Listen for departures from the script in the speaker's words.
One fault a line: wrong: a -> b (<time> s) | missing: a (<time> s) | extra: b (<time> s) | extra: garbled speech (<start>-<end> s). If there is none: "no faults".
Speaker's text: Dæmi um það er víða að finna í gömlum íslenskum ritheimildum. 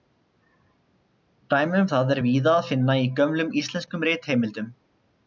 no faults